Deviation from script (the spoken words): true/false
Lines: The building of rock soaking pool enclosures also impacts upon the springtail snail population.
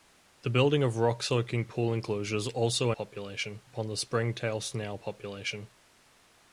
true